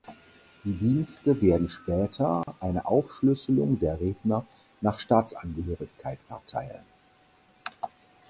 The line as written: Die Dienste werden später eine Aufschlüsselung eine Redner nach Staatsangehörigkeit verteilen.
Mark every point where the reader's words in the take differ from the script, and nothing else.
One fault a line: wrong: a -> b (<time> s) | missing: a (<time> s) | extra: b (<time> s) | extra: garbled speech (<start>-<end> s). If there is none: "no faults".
wrong: eine -> der (3.8 s)